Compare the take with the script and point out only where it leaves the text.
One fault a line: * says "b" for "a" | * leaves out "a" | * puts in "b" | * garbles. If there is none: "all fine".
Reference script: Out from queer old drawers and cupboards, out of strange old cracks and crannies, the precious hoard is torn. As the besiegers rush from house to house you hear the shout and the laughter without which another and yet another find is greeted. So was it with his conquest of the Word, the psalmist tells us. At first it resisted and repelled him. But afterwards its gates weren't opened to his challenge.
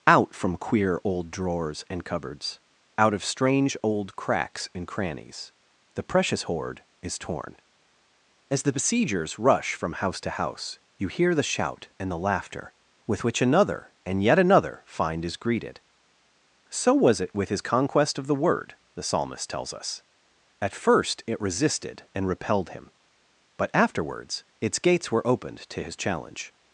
* says "with" for "without"
* says "were" for "weren't"